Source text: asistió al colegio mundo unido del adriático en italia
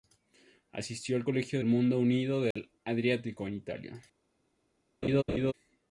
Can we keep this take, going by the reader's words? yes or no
yes